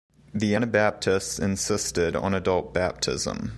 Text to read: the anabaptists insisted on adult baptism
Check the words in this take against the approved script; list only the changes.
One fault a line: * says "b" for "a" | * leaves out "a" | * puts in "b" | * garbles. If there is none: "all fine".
all fine